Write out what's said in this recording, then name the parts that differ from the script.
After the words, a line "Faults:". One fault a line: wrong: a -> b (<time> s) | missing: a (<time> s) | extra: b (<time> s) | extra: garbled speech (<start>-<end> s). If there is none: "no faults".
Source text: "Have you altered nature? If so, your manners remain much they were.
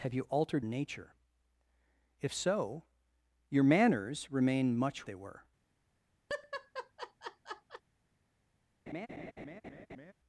"Have you altered nature? If so, your manners remain much they were.
Faults:
no faults